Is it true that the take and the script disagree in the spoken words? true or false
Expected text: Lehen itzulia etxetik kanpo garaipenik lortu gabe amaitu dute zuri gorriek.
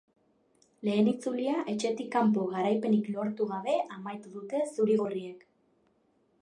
false